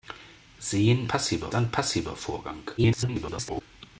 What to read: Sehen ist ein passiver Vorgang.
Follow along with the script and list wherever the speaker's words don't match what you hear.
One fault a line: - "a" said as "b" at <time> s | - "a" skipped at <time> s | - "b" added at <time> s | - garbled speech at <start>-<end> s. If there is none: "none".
- "ist" said as "passiver" at 1.1 s
- garbled speech at 2.8-3.6 s